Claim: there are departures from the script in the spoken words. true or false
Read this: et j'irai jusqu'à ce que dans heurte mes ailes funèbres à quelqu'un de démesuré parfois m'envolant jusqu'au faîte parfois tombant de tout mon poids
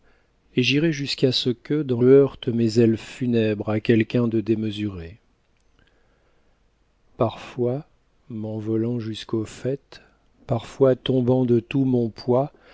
false